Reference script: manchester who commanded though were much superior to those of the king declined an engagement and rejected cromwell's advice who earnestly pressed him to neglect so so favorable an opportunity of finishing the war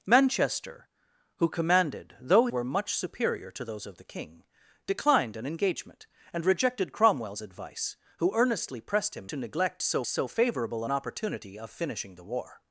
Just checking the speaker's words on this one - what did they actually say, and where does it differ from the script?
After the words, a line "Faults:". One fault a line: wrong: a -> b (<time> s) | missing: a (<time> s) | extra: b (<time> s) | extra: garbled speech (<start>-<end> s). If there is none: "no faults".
manchester who commanded though were much superior to those of the king declined an engagement and rejected cromwell's advice who earnestly pressed him to neglect so so favorable an opportunity of finishing the war
Faults:
no faults